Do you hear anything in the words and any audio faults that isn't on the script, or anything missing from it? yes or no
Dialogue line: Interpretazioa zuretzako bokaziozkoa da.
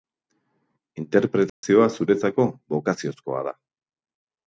yes